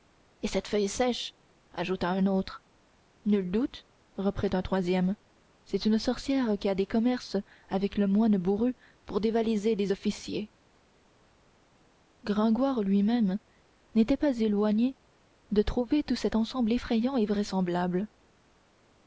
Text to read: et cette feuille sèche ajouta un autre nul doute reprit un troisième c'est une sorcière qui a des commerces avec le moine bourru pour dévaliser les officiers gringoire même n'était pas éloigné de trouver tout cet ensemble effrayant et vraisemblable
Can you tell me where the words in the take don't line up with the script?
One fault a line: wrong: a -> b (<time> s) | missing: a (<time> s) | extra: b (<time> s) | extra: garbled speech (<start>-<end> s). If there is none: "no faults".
extra: lui (12.8 s)